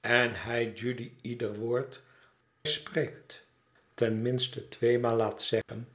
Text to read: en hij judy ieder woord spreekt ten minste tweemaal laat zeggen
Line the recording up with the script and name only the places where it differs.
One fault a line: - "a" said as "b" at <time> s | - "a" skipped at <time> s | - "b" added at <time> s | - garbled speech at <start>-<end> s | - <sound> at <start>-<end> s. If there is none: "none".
- dropout at 5.6-5.7 s